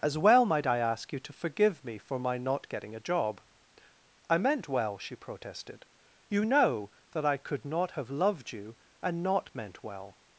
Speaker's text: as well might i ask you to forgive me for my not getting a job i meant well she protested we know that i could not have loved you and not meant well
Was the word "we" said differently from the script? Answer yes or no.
yes